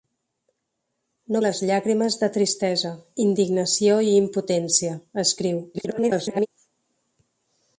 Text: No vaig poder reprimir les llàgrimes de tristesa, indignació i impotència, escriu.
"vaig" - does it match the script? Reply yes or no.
no